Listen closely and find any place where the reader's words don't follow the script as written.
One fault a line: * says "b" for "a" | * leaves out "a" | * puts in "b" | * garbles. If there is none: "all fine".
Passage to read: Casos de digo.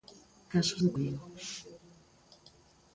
all fine